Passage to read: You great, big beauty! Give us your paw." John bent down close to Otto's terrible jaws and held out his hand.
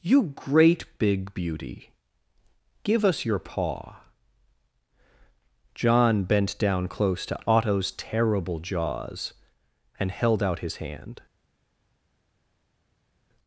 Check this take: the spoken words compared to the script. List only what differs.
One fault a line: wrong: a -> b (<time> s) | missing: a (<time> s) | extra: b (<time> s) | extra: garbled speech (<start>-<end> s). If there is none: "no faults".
no faults